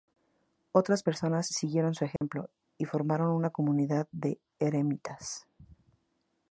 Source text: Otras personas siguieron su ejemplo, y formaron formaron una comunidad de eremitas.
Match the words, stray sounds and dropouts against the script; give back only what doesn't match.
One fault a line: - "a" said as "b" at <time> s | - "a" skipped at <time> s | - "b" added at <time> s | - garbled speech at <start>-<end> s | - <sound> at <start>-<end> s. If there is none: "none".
- dropout at 2.2-2.2 s
- "formaron" skipped at 3.3 s